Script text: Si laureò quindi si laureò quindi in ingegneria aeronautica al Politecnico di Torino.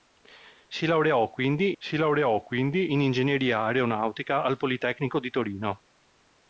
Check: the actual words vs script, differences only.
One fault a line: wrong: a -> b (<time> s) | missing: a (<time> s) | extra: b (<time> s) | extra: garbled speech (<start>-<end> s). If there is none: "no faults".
no faults